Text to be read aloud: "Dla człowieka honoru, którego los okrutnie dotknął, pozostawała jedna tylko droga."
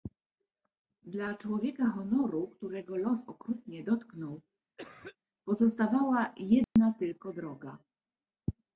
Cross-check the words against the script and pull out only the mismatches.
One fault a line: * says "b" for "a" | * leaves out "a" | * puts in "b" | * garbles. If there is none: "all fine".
all fine